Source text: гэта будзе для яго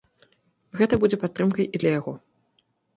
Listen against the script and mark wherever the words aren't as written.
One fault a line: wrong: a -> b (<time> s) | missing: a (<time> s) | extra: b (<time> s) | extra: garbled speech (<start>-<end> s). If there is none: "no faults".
extra: падтрымкай і (1.3 s)